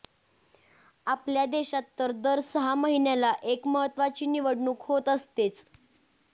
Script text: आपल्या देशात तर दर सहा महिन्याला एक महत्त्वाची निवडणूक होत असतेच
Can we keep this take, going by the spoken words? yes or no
yes